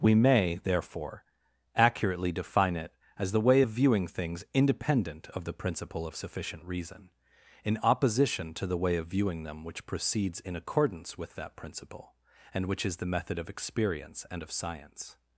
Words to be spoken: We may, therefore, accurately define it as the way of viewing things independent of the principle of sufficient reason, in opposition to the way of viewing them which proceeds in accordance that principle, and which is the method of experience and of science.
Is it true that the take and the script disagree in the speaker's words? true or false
true